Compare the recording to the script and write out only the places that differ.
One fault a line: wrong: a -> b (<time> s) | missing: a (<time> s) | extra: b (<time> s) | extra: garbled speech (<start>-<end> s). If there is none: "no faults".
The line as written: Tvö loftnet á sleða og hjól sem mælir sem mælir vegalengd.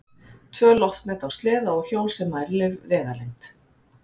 missing: sem mælir (2.8 s)